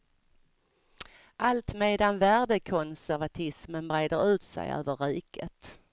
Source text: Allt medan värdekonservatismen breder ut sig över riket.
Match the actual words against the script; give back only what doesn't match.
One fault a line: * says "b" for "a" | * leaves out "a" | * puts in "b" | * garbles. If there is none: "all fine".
all fine